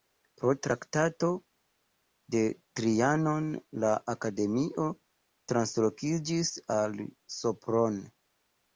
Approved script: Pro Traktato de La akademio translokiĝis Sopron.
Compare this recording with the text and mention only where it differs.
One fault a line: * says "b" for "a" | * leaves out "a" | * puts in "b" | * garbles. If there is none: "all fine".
* puts in "Trianon"
* puts in "al"